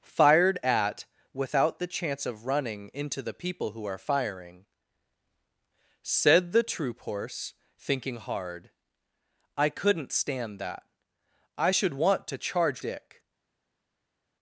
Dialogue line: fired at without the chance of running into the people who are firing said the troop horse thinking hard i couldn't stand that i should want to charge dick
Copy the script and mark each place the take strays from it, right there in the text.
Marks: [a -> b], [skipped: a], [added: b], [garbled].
fired at without the chance of running into the people who are firing said the troop horse thinking hard i couldn't stand that i should want to charge dick